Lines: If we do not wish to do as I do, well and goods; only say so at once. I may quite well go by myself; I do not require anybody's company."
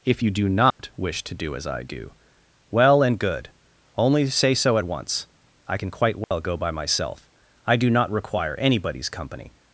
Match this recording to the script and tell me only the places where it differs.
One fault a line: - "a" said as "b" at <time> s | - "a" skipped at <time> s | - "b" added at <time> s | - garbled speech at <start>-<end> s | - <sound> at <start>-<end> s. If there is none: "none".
- "we" said as "you" at 0.2 s
- dropout at 0.7-0.8 s
- "goods" said as "good" at 3.2 s
- "may" said as "can" at 5.8 s
- dropout at 6.2-6.3 s